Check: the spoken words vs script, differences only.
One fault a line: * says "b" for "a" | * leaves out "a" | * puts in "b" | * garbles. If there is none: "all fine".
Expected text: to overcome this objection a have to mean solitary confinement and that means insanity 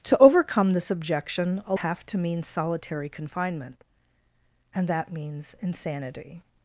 all fine